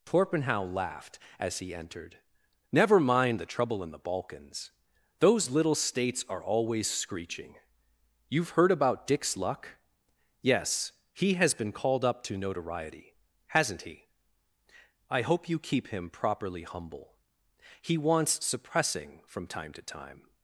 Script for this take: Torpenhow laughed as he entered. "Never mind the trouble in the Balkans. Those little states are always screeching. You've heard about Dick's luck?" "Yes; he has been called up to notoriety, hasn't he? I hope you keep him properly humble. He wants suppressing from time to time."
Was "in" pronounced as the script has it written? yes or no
yes